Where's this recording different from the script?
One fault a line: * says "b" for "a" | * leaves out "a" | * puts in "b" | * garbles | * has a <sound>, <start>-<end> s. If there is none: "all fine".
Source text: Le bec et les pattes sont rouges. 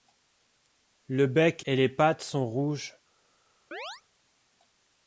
* has a chirp, 3.7-4.0 s